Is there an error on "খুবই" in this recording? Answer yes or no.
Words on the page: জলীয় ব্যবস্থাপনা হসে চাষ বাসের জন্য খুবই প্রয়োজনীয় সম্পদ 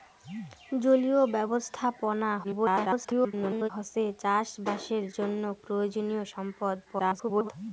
yes